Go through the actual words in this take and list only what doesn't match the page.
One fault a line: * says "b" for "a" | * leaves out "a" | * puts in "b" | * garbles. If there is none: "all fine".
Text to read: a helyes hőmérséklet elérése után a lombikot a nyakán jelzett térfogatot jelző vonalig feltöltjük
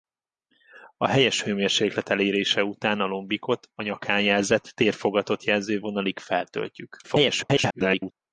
* garbles